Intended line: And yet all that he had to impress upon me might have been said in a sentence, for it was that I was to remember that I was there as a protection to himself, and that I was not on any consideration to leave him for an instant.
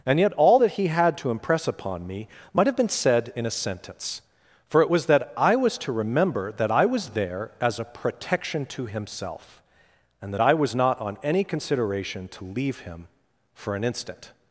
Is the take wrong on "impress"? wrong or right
right